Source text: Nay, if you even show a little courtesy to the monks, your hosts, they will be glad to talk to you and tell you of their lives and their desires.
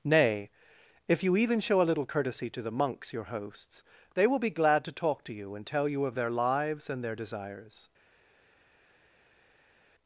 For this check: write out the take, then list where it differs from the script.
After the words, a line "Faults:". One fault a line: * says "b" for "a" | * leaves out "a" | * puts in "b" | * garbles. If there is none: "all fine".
Nay, if you even show a little courtesy to the monks, your hosts, they will be glad to talk to you and tell you of their lives and their desires.
Faults:
all fine